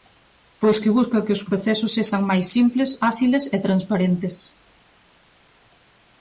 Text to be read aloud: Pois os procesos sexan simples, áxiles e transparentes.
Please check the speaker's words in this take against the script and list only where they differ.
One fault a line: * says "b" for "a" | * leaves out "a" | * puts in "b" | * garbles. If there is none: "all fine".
* puts in "que busca que"
* puts in "máis"